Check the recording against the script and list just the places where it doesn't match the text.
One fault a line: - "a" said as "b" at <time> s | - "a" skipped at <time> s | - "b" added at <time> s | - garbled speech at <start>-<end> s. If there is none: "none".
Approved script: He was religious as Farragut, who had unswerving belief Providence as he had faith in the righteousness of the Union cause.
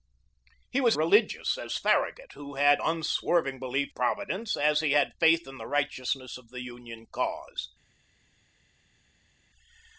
none